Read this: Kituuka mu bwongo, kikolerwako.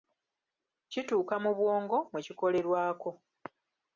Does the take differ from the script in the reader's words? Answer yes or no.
yes